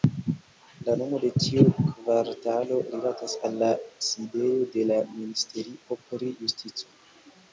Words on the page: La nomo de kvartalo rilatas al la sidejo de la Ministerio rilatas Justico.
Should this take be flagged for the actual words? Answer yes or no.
yes